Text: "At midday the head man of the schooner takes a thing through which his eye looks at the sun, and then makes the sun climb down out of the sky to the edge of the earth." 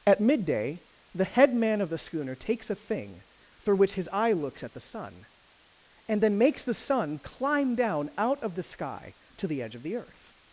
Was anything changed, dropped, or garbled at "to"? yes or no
no